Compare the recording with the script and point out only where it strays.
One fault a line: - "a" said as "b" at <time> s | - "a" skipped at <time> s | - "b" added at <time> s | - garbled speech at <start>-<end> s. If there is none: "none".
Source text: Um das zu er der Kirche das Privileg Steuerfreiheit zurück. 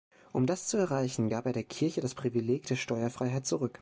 - "erreichen gab" added at 0.8 s
- "der" added at 2.7 s